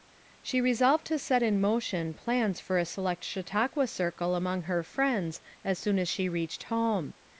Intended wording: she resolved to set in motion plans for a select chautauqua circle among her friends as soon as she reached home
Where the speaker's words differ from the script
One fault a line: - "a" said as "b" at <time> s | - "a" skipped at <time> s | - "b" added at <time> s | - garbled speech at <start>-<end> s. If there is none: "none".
none